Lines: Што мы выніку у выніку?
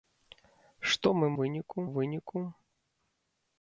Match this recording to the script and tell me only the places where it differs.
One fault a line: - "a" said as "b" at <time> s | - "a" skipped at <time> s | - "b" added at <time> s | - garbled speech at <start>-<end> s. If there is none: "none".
none